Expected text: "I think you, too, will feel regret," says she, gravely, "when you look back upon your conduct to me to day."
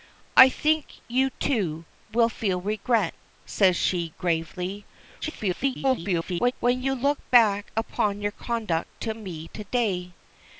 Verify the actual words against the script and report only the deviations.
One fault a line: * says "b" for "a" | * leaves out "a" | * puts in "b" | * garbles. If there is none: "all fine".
* garbles